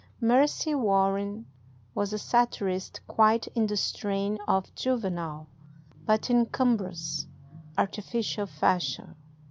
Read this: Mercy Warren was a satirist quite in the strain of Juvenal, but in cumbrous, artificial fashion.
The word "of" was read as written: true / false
true